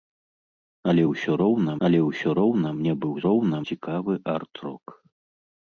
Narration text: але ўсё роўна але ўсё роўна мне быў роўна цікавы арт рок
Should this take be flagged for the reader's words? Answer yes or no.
no